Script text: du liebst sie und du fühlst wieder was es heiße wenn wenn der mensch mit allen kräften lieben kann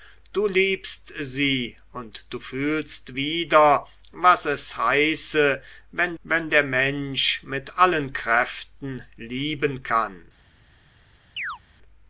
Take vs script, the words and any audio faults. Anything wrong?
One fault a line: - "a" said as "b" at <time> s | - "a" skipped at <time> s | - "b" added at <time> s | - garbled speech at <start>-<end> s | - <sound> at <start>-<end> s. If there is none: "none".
- chirp at 11.4-11.6 s